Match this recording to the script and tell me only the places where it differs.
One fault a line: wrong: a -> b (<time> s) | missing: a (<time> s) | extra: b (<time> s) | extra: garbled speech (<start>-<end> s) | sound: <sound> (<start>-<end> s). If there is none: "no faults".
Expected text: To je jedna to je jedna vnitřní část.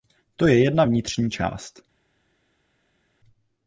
missing: to je jedna (0.8 s)